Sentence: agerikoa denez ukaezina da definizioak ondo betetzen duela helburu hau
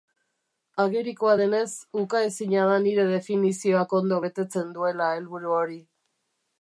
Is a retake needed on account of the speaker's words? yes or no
yes